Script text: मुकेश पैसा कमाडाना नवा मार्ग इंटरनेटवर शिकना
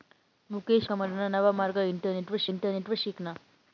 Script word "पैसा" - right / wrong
wrong